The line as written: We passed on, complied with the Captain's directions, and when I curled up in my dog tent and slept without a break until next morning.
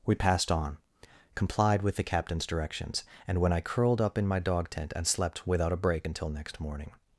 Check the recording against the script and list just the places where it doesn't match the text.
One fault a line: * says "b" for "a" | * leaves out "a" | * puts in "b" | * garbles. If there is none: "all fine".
all fine